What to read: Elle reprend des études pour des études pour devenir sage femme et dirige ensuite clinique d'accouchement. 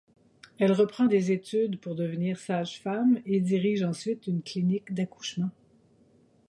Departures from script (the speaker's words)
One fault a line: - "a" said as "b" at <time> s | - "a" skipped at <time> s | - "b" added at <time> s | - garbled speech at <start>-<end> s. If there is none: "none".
- "des études pour" skipped at 1.9 s
- "une" added at 4.3 s